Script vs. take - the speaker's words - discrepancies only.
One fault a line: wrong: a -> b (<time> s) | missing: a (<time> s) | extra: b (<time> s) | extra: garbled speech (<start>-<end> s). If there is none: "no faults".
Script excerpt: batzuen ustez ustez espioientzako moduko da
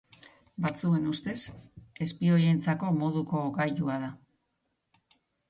missing: ustez (1.4 s)
extra: gailua (3.6 s)